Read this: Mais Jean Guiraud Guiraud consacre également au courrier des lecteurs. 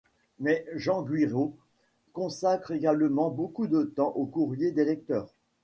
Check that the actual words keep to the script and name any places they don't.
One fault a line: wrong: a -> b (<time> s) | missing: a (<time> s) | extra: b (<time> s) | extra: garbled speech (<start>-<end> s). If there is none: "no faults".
missing: Guiraud (1.6 s)
extra: beaucoup de temps (3.3 s)